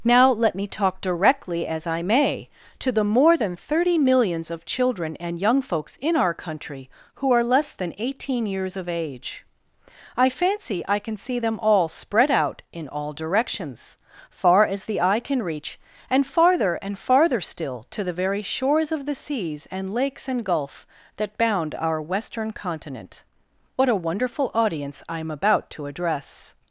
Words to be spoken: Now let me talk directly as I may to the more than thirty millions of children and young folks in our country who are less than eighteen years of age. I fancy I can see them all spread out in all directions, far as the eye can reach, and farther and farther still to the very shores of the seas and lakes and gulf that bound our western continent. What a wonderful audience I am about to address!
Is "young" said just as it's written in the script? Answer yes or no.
yes